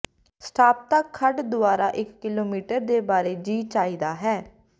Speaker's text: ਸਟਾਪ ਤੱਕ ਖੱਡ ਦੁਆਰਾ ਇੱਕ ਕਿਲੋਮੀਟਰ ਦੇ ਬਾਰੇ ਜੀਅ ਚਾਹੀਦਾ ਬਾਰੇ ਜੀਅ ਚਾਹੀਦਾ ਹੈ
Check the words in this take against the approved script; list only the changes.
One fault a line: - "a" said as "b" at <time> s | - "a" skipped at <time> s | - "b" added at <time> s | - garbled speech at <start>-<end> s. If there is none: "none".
- "ਬਾਰੇ ਜੀਅ ਚਾਹੀਦਾ" skipped at 4.1 s